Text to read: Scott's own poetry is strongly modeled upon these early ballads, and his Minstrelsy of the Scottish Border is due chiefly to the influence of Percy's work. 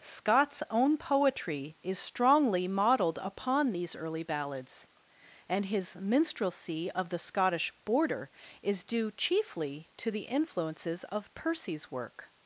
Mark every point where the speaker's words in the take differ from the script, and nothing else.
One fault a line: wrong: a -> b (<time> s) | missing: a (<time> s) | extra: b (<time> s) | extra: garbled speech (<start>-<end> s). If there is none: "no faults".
wrong: influence -> influences (10.2 s)